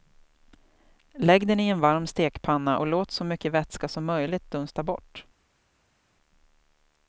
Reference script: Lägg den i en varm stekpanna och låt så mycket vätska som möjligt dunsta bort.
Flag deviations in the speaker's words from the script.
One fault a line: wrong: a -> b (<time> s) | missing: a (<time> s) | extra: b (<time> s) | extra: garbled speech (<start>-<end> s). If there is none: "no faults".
no faults